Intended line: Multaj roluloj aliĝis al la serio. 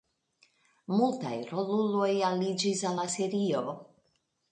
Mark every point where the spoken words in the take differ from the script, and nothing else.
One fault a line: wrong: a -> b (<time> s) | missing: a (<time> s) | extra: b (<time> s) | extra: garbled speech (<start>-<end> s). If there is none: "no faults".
no faults